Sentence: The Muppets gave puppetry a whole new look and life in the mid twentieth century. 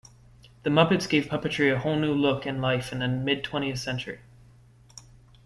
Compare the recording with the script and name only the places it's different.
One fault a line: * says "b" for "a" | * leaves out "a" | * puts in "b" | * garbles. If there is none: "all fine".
all fine